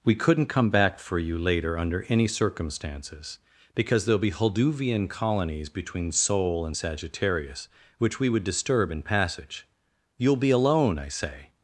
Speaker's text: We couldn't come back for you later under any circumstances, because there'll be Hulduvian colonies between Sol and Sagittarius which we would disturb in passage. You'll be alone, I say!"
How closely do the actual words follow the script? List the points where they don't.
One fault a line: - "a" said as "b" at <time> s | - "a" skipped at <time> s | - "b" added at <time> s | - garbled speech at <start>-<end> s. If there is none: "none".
none